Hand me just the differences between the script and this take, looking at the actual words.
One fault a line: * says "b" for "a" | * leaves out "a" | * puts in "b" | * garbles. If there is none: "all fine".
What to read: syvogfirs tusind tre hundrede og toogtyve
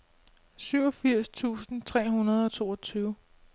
all fine